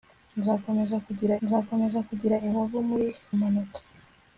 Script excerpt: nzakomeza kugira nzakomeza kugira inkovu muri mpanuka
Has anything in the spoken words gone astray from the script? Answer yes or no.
no